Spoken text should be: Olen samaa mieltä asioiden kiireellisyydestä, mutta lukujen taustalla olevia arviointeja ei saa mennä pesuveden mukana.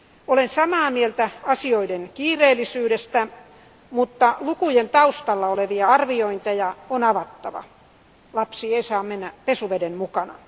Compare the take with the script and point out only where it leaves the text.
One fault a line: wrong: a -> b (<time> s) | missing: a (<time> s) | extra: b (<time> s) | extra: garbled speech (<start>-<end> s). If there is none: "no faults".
extra: on avattava Lapsi (6.9 s)